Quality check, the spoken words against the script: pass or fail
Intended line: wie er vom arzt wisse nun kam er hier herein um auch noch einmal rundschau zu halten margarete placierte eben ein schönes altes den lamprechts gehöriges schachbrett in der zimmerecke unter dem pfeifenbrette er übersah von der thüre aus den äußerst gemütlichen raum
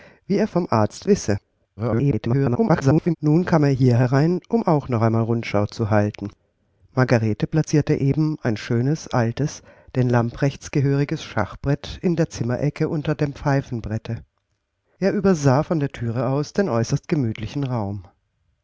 fail